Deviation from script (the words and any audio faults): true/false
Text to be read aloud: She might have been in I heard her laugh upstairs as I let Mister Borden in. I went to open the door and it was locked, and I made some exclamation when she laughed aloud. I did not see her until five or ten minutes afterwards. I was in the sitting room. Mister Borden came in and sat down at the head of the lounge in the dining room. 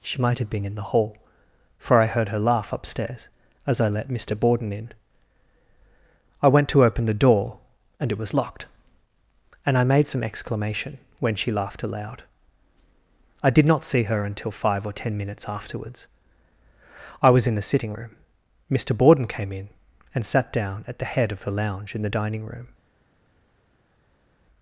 true